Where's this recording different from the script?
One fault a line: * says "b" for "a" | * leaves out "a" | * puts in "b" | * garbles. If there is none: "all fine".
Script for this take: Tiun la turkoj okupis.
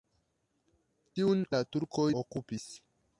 all fine